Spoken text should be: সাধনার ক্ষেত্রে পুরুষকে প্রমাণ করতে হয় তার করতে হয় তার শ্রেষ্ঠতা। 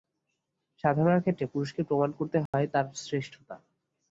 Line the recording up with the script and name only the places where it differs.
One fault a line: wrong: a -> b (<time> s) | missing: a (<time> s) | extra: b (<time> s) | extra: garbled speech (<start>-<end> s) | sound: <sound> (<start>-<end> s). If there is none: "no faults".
sound: dropout (2.5-2.5 s)
missing: করতে হয় তার (2.9 s)